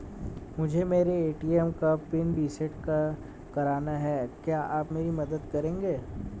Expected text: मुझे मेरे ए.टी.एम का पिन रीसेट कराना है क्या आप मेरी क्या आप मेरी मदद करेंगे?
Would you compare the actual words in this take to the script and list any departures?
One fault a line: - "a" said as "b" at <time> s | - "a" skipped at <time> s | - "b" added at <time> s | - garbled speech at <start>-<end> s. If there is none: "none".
- "क्या आप मेरी" skipped at 5.1 s